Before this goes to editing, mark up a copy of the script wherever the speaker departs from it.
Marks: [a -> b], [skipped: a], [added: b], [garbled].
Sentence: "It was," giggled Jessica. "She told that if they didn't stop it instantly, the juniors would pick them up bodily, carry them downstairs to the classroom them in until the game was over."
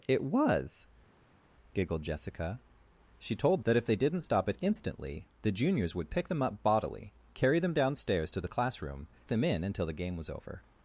"It was," giggled Jessica. "She told that if they didn't stop it instantly, the juniors would pick them up bodily, carry them downstairs to the classroom them in until the game was over."